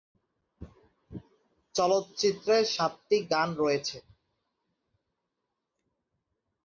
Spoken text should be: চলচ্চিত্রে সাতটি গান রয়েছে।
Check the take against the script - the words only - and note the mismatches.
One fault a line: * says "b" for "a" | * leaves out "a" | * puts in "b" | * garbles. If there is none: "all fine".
all fine